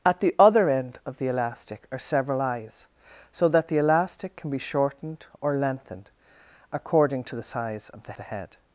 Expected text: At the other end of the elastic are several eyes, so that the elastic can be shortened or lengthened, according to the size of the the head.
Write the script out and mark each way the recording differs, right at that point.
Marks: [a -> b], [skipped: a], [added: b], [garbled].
At the other end of the elastic are several eyes, so that the elastic can be shortened or lengthened, according to the size of the the head.